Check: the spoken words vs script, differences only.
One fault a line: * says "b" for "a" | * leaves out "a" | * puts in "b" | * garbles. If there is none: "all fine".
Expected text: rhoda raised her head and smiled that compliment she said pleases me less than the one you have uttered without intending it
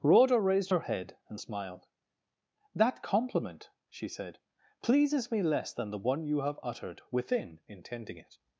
* says "within" for "without"